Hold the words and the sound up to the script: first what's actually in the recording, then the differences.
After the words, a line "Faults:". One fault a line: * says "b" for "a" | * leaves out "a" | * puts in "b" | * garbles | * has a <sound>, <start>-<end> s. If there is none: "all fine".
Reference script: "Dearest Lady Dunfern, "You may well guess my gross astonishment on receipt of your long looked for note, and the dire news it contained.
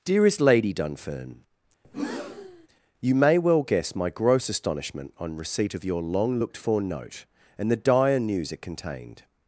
"Dearest Lady Dunfern, "You may well guess my gross astonishment on receipt of your long looked for note, and the dire news it contained.
Faults:
* has a breath, 1.8-2.7 s